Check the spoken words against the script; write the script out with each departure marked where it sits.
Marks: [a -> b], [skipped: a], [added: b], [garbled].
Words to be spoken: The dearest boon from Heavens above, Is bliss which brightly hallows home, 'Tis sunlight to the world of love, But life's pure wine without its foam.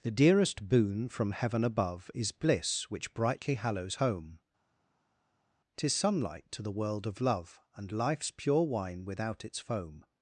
The dearest boon from [Heavens -> Heaven] above, Is bliss which brightly hallows home, 'Tis sunlight to the world of love, [But -> And] life's pure wine without its foam.